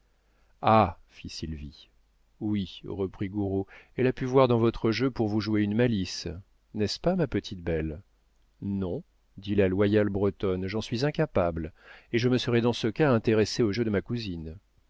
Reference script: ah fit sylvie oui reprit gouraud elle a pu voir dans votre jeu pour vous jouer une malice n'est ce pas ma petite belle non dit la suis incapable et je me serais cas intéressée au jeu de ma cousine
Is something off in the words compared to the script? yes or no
yes